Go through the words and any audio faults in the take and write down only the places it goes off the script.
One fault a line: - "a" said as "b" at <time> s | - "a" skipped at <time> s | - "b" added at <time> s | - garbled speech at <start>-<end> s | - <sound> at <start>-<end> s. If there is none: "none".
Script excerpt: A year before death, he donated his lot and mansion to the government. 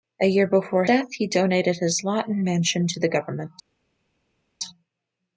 none